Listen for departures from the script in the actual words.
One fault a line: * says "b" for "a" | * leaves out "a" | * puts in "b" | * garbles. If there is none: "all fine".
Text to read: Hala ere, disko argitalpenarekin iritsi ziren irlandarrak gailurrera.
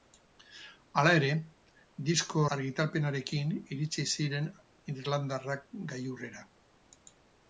all fine